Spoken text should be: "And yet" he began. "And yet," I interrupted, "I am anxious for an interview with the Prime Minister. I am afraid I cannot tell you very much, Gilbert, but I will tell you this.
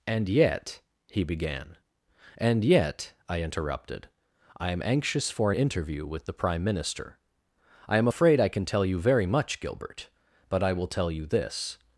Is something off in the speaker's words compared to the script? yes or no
yes